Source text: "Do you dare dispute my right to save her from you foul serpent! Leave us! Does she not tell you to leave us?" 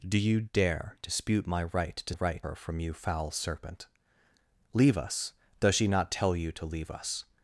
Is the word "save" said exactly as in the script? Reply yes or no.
no